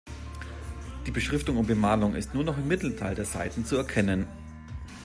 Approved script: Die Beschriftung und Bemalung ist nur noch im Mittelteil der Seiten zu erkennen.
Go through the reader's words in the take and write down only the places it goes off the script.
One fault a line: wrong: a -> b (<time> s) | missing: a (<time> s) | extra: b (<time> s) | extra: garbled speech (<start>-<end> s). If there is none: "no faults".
no faults